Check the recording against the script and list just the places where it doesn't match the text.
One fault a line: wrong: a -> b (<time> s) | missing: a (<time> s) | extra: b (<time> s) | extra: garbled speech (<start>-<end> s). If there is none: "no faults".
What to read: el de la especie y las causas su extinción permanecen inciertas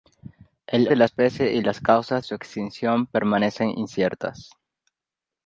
no faults